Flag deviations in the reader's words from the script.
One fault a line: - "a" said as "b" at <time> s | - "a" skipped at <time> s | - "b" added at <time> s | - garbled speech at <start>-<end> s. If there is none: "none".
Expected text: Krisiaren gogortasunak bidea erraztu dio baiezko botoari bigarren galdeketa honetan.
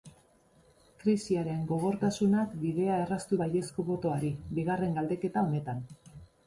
- "dio" skipped at 3.4 s